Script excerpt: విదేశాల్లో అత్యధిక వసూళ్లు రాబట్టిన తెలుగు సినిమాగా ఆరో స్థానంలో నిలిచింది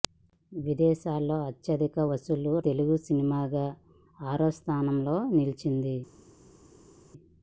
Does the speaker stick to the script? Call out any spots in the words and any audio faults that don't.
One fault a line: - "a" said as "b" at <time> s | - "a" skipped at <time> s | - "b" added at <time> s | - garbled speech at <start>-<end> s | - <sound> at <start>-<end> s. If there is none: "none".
- "రాబట్టిన" skipped at 2.5 s